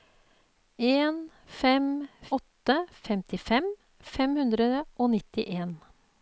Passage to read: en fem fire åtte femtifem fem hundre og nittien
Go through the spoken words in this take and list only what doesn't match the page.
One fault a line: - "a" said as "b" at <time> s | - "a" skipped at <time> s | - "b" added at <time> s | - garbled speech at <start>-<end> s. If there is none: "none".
- "fire" skipped at 2.1 s